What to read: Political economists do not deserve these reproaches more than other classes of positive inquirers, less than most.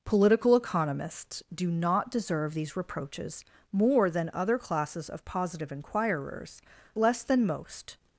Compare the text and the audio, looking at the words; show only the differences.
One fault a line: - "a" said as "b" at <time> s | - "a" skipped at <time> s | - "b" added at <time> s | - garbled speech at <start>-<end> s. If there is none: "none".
none